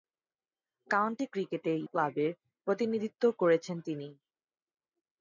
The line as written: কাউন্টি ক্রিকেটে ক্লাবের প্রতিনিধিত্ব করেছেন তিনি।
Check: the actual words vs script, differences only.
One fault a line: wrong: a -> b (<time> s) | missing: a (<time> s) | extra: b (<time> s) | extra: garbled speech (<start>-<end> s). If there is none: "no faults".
no faults